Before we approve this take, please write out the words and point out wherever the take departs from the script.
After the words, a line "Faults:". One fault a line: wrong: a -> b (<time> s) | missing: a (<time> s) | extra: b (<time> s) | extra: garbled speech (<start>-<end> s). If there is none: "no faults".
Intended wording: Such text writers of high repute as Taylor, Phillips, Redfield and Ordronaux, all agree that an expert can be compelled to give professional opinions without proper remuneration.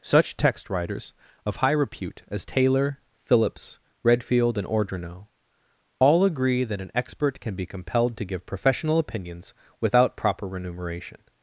Such text writers of high repute as Taylor, Phillips, Redfield and Ordronaux, all agree that an expert can be compelled to give professional opinions without proper remuneration.
Faults:
no faults